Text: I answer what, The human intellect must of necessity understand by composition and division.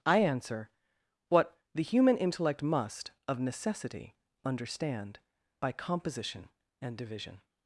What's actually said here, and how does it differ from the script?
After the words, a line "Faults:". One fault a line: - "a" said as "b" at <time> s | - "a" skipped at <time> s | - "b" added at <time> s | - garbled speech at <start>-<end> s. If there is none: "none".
I answer what, The human intellect must of necessity understand by composition and division.
Faults:
none